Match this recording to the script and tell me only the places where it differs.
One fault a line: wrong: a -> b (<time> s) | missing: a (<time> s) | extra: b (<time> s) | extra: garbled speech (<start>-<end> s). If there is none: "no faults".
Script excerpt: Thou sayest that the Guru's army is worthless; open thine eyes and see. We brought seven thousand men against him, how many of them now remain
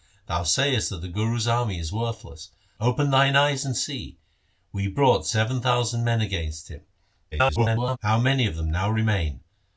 extra: garbled speech (7.3-8.0 s)